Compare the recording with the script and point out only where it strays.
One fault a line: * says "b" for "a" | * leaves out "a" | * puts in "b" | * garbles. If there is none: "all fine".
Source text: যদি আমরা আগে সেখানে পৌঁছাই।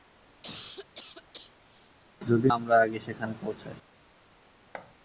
all fine